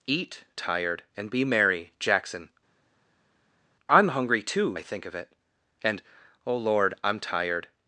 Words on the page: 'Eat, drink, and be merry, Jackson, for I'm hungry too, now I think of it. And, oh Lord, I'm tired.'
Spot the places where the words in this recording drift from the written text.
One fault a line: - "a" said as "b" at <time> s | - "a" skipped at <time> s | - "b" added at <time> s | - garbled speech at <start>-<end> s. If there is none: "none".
- "drink" said as "tired" at 0.6 s
- "for" skipped at 2.5 s
- "now" skipped at 4.8 s